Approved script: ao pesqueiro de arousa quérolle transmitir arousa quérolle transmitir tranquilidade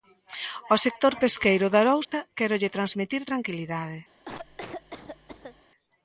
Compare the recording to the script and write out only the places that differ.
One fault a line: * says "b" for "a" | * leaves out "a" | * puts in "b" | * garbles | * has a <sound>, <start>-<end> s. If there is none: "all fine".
* puts in "sector"
* has a dropout, 2.0-2.1 s
* leaves out "arousa quérolle transmitir"
* has a cough, 4.3-5.6 s